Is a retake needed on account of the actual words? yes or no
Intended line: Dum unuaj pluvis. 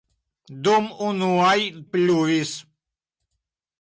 no